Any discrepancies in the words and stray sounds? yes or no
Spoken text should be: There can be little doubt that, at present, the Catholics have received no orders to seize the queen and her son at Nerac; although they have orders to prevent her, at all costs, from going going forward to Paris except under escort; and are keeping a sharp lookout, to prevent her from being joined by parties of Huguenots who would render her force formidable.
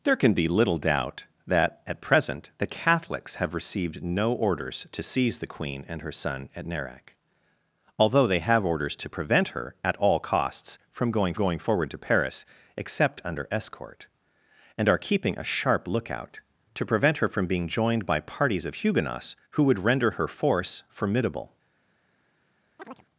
yes